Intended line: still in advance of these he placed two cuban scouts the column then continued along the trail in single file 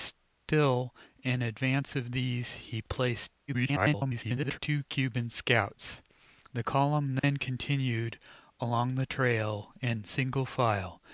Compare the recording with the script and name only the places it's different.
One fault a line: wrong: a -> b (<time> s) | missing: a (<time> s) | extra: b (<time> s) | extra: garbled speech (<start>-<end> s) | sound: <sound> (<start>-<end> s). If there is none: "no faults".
extra: garbled speech (3.5-4.6 s)
sound: dropout (7.2-7.2 s)